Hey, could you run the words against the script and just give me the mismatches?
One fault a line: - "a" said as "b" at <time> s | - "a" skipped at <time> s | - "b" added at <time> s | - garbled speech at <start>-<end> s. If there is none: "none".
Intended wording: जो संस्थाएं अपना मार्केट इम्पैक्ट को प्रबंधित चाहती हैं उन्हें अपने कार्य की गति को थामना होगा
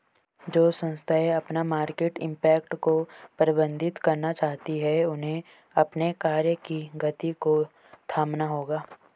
- "करना" added at 4.0 s